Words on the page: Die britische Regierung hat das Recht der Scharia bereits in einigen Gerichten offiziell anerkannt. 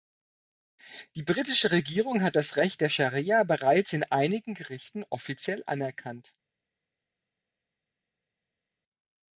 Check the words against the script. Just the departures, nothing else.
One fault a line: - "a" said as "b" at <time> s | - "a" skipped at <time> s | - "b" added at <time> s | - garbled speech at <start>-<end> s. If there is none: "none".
none